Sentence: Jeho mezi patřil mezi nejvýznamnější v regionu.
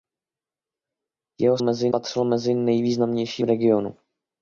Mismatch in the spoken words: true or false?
false